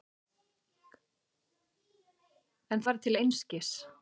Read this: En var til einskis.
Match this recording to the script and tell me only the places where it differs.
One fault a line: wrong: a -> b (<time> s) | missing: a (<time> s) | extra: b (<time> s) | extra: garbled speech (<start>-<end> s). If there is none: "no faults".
no faults